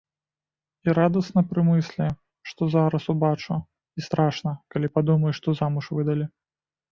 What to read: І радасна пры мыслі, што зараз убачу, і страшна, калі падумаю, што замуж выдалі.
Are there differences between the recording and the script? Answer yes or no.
no